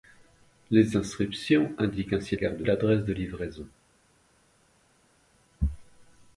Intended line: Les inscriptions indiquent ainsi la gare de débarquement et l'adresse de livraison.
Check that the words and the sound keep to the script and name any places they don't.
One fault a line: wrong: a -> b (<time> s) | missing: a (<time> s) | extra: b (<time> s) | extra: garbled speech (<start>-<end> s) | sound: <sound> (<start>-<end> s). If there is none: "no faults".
missing: la (2.4 s)
missing: débarquement (2.7 s)